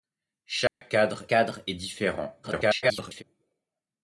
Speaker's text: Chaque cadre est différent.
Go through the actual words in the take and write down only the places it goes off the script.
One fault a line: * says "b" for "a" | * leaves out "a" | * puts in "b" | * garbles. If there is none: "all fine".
* puts in "cadre"
* garbles